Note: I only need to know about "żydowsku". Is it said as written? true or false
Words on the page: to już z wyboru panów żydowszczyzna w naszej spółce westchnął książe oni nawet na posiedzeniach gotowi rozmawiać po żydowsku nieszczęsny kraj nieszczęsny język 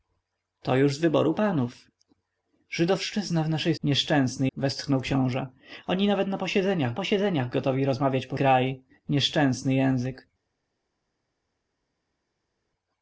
false